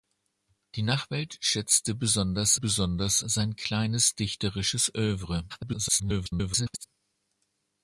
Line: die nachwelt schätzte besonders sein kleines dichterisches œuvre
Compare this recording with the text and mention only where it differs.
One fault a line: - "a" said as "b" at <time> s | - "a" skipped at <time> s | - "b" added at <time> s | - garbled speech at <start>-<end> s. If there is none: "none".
- "besonders" added at 2.5 s
- garbled speech at 5.5-6.8 s